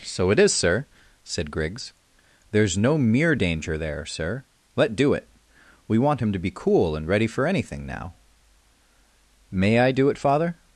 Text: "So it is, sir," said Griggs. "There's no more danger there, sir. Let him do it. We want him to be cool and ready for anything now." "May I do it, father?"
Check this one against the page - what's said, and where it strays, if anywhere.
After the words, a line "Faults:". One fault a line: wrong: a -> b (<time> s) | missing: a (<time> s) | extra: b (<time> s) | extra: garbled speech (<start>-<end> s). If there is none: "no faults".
"So it is, sir," said Griggs. "There's no mere danger there, sir. Let do it. We want him to be cool and ready for anything now." "May I do it, father?"
Faults:
wrong: more -> mere (3.0 s)
missing: him (5.0 s)